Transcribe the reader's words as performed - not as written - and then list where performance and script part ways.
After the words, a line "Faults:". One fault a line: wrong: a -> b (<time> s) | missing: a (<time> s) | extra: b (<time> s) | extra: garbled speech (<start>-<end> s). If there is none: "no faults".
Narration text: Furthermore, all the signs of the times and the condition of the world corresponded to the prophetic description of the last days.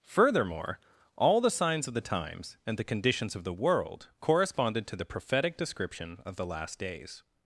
Furthermore, all the signs of the times and the conditions of the world corresponded to the prophetic description of the last days.
Faults:
wrong: condition -> conditions (2.8 s)